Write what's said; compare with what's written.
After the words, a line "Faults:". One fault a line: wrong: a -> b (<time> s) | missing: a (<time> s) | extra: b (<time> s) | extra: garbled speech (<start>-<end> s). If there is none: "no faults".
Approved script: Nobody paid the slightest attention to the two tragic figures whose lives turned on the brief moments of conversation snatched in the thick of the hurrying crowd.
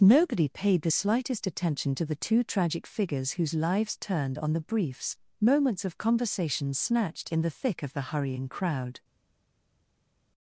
Nobody paid the slightest attention to the two tragic figures whose lives turned on the briefs moments of conversation snatched in the thick of the hurrying crowd.
Faults:
wrong: brief -> briefs (4.6 s)